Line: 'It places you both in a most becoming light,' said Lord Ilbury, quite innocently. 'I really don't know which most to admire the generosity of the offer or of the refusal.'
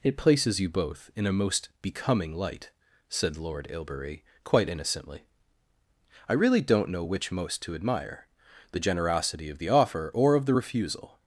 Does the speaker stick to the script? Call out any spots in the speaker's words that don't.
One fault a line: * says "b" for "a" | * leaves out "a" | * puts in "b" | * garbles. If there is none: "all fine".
all fine